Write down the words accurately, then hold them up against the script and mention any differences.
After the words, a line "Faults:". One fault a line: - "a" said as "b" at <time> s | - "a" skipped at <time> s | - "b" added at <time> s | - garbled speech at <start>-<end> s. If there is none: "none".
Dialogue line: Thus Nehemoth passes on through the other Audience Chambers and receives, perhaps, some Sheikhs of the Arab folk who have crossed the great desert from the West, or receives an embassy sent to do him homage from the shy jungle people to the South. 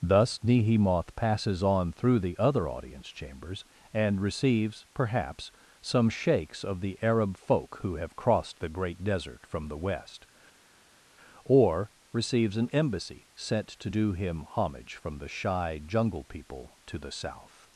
Thus Nehemoth passes on through the other Audience Chambers and receives, perhaps, some Sheikhs of the Arab folk who have crossed the great desert from the West, or receives an embassy sent to do him homage from the shy jungle people to the South.
Faults:
none